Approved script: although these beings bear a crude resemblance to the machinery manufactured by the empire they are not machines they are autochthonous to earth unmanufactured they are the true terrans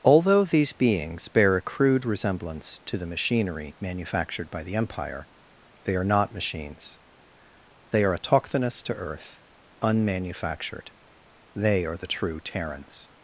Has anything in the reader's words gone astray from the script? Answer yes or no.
no